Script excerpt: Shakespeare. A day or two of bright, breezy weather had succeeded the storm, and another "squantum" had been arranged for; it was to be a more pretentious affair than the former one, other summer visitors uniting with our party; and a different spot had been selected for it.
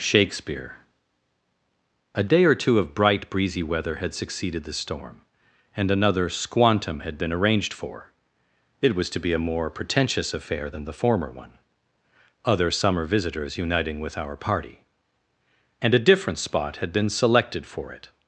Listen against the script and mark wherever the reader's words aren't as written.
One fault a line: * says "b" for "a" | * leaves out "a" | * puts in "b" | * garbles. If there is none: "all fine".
all fine